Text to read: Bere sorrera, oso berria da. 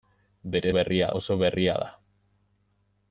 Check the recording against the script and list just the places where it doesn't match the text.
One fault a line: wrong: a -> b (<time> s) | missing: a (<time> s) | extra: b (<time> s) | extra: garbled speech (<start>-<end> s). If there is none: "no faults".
wrong: sorrera -> berria (0.7 s)